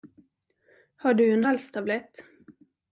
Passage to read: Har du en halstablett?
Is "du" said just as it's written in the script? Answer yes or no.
yes